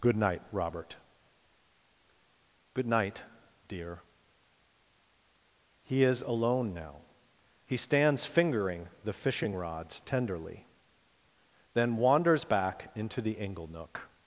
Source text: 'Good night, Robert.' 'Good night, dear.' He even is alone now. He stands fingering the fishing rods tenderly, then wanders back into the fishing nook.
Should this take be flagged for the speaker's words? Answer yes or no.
yes